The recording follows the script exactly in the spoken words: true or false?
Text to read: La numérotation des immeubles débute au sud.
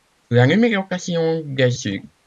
false